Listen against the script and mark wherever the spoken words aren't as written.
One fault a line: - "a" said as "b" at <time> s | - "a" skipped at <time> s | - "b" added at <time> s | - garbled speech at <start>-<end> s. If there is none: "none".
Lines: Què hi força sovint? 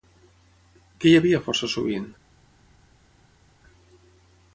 - "havia" added at 1.2 s